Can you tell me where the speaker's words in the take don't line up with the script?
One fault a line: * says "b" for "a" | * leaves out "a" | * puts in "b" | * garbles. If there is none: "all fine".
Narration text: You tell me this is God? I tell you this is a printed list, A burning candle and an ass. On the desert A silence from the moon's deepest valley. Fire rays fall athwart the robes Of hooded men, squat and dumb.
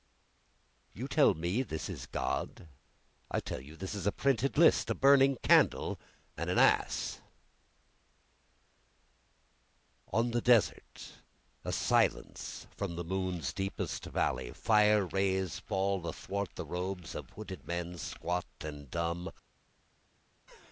all fine